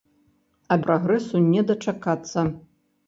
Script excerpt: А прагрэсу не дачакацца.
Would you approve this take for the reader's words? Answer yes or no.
yes